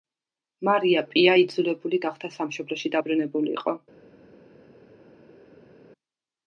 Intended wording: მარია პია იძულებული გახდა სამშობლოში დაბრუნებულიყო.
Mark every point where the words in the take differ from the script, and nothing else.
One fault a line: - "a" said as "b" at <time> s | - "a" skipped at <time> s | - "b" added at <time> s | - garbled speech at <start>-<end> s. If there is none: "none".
none